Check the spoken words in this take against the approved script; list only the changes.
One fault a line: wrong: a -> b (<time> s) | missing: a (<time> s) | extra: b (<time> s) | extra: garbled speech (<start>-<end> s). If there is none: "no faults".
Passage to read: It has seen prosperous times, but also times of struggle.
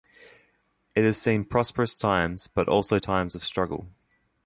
no faults